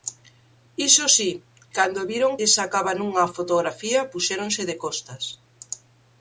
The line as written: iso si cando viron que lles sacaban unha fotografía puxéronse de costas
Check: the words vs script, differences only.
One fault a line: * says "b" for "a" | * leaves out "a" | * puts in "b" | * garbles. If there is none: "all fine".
* leaves out "que"